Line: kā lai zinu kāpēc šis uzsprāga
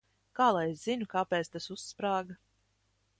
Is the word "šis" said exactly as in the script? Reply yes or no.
no